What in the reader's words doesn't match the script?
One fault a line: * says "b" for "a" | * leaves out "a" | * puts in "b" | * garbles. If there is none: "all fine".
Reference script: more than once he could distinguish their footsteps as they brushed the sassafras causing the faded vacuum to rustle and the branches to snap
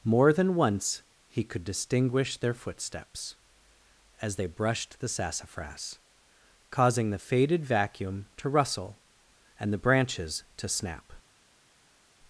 all fine